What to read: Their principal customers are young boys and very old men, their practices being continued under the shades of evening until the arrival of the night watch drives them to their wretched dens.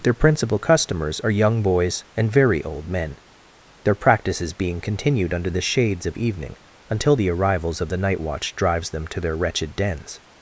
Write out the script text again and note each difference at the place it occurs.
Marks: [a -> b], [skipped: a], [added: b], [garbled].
Their principal customers are young boys and very old men, their practices being continued under the shades of evening until the [arrival -> arrivals] of the night watch drives them to their wretched dens.